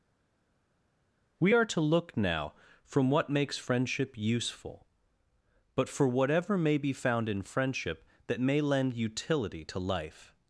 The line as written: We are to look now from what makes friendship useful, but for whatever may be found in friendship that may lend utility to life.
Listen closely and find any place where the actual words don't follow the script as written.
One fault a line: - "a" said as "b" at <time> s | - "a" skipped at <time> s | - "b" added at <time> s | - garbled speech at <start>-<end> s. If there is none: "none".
none